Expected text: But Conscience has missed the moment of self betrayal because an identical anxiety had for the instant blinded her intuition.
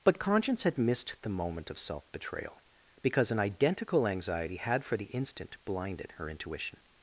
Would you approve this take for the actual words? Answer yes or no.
no